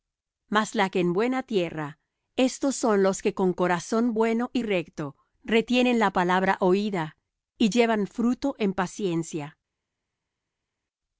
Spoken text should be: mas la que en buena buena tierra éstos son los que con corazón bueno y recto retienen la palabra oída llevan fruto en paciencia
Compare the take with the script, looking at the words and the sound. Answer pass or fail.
fail